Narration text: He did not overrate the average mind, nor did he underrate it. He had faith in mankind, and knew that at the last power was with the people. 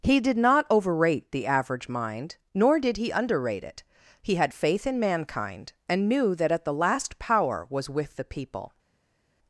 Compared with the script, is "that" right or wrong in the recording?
right